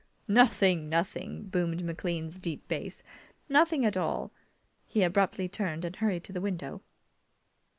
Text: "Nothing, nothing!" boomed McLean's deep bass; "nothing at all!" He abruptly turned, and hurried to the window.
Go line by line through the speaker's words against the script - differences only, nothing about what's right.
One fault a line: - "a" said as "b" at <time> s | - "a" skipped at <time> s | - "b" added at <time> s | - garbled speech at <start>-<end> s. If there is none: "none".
none